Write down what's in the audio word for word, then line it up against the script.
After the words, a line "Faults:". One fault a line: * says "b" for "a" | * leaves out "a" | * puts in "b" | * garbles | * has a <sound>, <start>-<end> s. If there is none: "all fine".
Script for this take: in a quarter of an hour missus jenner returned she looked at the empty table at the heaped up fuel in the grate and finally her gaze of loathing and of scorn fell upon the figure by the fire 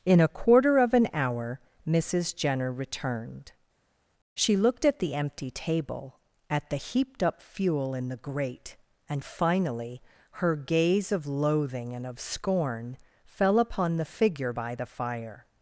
in a quarter of an hour missus jenner returned she looked at the empty table at the heaped up fuel in the grate and finally her gaze of loathing and of scorn fell upon the figure by the fire
Faults:
all fine